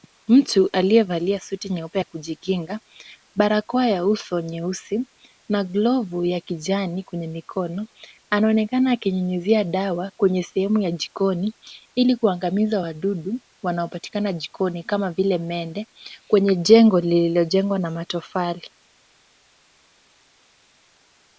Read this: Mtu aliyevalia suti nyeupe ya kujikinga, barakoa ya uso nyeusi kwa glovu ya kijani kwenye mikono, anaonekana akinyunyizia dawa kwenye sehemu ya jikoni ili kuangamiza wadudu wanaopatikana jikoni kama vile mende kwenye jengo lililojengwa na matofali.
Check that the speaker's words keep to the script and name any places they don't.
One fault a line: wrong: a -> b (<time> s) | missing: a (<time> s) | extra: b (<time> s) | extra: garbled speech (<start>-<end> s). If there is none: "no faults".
wrong: kwa -> na (5.5 s)